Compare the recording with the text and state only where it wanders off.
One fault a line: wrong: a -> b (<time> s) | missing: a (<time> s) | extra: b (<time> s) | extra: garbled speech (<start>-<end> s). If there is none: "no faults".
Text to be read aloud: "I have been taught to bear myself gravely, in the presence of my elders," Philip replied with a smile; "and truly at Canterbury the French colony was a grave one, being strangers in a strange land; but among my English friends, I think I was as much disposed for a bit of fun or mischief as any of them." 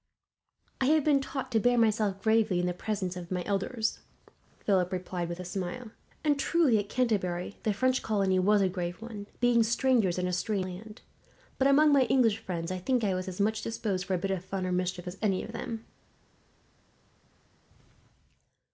no faults